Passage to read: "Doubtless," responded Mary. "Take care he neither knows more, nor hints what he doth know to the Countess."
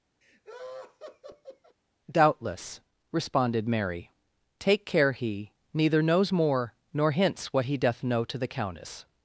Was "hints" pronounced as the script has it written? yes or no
yes